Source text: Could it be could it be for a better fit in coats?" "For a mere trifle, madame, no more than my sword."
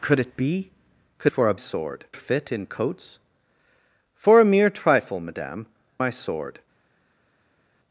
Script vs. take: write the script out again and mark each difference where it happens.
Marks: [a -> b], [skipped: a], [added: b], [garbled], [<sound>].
Could it be could [skipped: it be] for a [better -> sword] fit in coats?" "For a mere trifle, madame, [skipped: no more than] my sword."